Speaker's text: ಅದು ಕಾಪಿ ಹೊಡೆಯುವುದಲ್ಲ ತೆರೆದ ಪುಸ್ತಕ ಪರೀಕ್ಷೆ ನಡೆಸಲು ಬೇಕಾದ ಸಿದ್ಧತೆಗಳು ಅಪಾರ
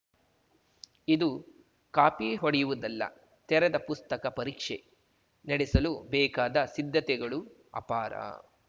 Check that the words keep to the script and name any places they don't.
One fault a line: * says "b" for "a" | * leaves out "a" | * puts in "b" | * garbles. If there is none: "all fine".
* says "ಇದು" for "ಅದು"